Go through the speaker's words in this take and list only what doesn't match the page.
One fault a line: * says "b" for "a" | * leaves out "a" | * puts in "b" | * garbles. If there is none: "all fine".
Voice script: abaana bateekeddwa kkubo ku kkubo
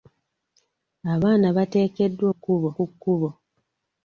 all fine